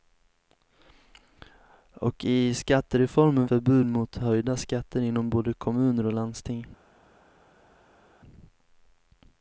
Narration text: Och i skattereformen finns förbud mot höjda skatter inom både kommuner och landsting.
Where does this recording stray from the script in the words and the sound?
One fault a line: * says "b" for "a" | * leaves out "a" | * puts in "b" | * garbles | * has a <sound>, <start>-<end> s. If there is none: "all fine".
* leaves out "finns"